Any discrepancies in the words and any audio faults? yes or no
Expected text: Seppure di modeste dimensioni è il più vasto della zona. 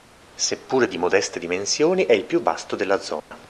yes